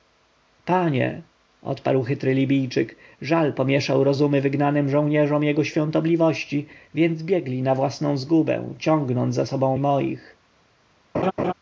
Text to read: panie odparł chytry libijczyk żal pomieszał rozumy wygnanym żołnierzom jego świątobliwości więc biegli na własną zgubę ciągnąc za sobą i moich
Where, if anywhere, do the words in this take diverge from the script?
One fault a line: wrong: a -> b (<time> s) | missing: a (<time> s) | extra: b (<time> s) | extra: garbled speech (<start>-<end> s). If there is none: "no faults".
no faults